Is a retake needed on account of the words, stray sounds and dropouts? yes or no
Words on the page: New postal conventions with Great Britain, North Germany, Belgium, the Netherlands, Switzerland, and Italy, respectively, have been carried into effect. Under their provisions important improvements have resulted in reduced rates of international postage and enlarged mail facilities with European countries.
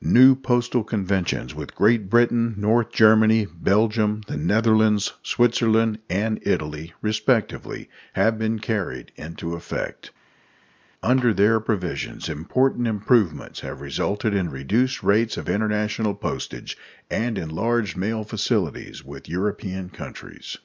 no